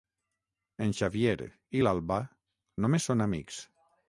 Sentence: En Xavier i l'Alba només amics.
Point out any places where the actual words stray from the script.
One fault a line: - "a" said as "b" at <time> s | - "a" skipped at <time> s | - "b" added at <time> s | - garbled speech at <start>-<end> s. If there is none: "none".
- "són" added at 3.1 s